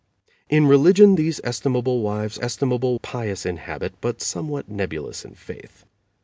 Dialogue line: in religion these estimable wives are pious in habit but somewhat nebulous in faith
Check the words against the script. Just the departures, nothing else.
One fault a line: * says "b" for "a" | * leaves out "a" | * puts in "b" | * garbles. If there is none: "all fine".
* says "estimable" for "are"